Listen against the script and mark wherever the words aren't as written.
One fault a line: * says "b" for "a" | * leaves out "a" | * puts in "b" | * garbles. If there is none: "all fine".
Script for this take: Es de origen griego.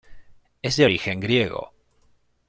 all fine